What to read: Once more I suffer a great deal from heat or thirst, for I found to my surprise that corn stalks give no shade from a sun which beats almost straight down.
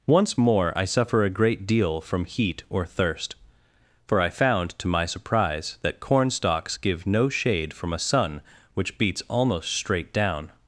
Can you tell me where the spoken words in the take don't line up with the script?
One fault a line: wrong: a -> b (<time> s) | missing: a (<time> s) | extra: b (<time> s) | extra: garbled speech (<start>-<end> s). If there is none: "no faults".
no faults